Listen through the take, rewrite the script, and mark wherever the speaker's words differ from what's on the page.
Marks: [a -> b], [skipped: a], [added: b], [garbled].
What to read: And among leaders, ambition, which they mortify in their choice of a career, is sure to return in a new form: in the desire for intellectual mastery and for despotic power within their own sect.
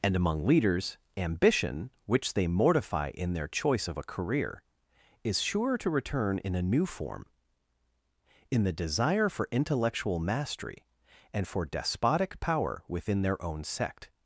And among leaders, ambition, which they mortify in their choice of a career, is sure to return in a new form: in the desire for intellectual mastery and for despotic power within their own sect.